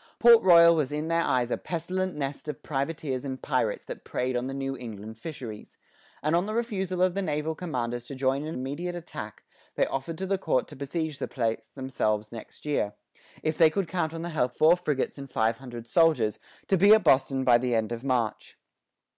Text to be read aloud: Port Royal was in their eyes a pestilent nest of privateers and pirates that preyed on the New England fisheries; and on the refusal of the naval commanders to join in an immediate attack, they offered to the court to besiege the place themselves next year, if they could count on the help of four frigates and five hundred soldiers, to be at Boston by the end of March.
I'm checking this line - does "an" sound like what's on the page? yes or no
no